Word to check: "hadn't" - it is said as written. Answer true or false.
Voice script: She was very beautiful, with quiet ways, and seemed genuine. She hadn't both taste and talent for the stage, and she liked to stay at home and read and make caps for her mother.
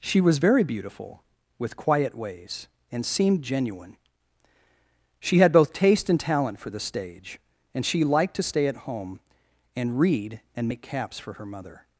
false